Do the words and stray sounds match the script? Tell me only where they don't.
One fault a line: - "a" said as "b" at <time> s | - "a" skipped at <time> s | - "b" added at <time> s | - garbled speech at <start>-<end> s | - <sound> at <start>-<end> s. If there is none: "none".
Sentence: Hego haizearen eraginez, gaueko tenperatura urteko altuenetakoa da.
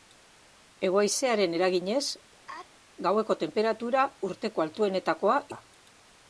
- sneeze at 2.5-2.7 s